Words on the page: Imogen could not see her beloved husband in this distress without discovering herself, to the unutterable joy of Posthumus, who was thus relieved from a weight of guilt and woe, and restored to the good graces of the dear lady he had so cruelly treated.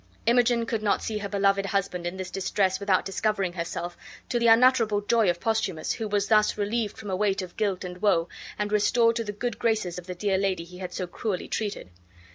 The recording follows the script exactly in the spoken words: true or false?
true